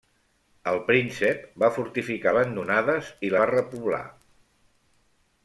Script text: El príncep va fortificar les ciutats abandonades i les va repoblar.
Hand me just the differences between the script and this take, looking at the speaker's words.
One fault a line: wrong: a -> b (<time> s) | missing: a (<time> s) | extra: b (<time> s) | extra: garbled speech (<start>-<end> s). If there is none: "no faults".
missing: les ciutats (2.3 s)
missing: les (3.3 s)